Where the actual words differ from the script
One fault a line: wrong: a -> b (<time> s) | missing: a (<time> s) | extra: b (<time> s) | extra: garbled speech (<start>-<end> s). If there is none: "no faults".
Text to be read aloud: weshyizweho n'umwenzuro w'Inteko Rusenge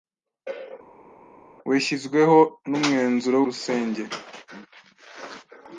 missing: w'Inteko (3.4 s)